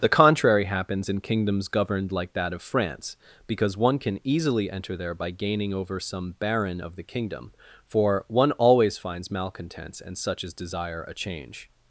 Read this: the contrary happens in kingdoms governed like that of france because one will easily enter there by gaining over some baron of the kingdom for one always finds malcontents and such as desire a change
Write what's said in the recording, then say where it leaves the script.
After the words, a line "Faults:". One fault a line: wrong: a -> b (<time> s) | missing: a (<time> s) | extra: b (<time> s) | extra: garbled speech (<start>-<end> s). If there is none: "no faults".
the contrary happens in kingdoms governed like that of france because one can easily enter there by gaining over some baron of the kingdom for one always finds malcontents and such as desire a change
Faults:
wrong: will -> can (4.0 s)